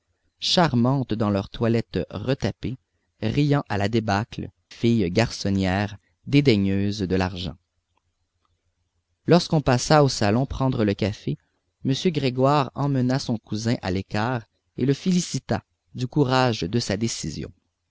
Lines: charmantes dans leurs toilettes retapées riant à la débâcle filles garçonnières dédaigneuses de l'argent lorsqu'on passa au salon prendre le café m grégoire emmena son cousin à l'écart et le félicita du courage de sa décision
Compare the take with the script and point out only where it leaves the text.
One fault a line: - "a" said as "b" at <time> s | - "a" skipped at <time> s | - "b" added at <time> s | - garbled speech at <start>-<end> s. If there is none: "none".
none